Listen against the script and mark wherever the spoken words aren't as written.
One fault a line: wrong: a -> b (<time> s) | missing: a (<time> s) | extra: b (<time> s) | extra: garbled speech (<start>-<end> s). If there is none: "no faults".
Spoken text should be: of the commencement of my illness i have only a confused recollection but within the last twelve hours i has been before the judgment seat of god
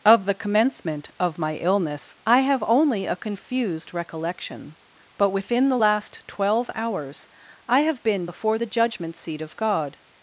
wrong: has -> have (7.8 s)